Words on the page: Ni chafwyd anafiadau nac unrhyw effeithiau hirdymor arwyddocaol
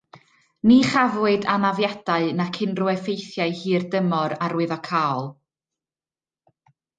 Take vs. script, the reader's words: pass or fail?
pass